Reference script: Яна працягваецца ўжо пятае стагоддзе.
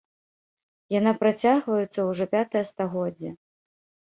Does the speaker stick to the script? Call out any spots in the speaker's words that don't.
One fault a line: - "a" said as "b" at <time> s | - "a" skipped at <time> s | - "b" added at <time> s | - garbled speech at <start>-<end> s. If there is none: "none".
none